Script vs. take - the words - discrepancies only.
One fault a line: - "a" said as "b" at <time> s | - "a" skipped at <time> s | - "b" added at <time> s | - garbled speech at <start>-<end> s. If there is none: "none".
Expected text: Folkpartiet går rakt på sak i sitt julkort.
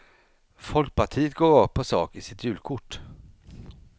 none